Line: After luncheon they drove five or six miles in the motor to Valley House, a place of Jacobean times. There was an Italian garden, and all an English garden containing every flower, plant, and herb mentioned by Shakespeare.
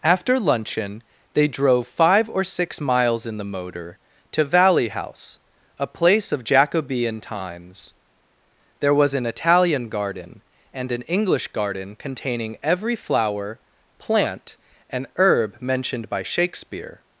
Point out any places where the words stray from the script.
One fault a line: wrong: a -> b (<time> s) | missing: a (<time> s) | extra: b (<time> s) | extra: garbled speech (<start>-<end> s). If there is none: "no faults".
missing: all (10.9 s)